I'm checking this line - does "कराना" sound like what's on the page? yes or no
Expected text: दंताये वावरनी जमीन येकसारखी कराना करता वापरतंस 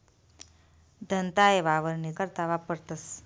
no